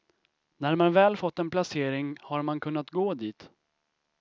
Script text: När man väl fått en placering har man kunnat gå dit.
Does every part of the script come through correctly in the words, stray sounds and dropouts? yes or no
yes